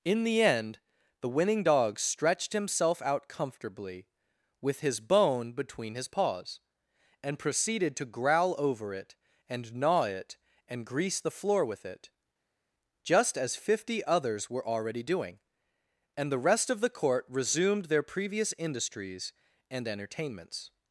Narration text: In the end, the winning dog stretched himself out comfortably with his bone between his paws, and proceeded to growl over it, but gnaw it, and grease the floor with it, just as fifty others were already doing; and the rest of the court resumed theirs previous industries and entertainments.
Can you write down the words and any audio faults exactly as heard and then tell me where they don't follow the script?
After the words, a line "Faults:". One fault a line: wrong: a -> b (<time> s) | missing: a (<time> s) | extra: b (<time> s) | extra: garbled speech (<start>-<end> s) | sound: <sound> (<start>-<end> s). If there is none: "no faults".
In the end, the winning dog stretched himself out comfortably with his bone between his paws, and proceeded to growl over it, and gnaw it, and grease the floor with it, just as fifty others were already doing; and the rest of the court resumed their previous industries and entertainments.
Faults:
wrong: but -> and (9.5 s)
wrong: theirs -> their (17.8 s)